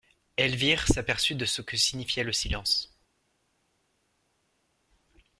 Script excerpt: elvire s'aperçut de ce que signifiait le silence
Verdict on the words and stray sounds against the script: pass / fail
pass